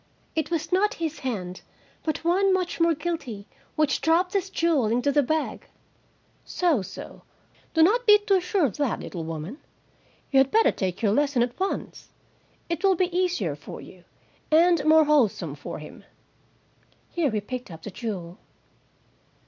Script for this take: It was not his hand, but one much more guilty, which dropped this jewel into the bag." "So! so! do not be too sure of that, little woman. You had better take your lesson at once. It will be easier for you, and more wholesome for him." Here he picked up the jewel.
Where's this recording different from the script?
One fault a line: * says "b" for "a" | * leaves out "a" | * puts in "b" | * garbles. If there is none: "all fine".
all fine